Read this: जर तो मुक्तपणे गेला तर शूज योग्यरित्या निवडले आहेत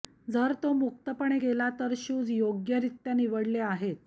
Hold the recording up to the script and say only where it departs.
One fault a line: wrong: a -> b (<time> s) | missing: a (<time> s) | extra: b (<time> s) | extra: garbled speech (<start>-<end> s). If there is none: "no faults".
no faults